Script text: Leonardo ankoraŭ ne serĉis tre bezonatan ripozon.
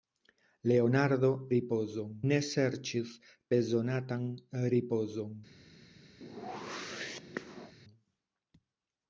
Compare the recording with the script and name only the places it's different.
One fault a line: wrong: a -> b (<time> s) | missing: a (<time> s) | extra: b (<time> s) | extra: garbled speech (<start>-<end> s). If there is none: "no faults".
wrong: ankoraŭ -> ripozon (1.6 s)
missing: tre (3.1 s)